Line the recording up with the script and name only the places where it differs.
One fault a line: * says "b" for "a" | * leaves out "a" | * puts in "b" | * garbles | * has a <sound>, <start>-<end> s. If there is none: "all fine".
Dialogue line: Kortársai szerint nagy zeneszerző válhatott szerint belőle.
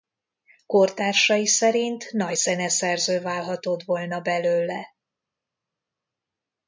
* says "volna" for "szerint"